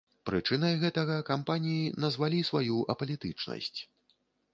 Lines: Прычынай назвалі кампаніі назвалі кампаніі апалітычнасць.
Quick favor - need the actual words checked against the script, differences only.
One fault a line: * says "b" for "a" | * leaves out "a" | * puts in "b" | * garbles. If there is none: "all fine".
* says "гэтага" for "назвалі"
* says "сваю" for "кампаніі"